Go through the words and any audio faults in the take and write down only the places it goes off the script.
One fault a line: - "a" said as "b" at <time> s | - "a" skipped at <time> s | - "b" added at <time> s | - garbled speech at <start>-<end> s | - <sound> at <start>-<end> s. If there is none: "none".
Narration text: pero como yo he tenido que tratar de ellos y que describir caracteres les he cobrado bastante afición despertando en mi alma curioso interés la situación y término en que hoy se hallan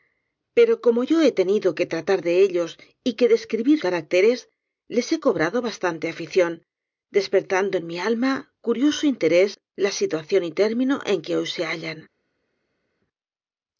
none